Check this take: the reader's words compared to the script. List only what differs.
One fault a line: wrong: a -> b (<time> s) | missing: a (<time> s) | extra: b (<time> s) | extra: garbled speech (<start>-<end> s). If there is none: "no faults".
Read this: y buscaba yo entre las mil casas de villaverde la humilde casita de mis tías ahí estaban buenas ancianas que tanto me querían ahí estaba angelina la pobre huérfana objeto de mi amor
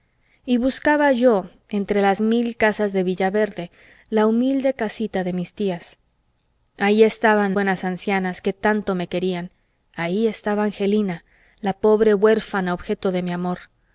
no faults